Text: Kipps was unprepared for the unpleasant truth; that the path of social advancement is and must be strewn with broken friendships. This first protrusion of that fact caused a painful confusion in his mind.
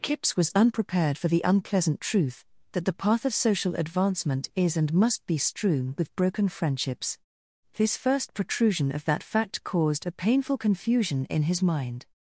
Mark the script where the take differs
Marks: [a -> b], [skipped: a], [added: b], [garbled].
Kipps was unprepared for the unpleasant truth; that the path of social advancement is and must be strewn with broken friendships. This first protrusion of that fact caused a painful confusion in his mind.